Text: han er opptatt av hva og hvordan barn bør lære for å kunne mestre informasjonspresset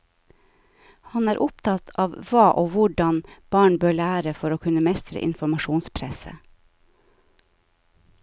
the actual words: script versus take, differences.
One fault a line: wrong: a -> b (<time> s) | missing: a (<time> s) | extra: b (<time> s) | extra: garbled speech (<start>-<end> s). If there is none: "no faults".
no faults